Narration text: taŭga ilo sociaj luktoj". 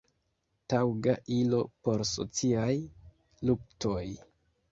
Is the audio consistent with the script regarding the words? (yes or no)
no